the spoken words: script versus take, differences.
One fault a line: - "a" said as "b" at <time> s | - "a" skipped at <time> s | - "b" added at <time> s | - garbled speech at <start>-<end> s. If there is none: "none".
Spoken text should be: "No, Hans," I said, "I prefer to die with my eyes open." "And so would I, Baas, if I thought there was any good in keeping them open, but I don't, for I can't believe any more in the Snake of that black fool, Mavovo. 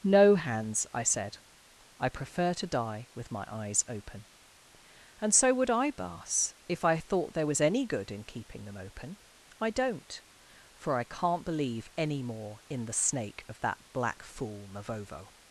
- "but" skipped at 9.2 s